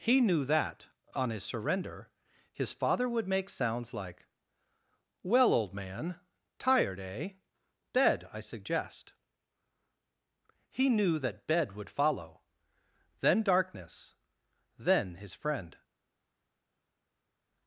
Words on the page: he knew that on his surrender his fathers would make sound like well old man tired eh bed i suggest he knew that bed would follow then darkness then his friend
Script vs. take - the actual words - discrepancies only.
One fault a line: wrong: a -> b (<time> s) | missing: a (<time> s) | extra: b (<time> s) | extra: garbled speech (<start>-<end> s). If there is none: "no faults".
wrong: fathers -> father (2.7 s)
wrong: sound -> sounds (3.5 s)